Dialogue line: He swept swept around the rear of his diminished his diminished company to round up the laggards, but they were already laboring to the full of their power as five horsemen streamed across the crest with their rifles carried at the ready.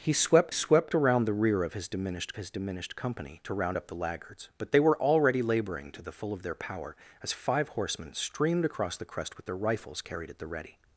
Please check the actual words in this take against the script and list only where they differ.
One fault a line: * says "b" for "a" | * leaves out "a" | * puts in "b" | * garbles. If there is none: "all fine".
all fine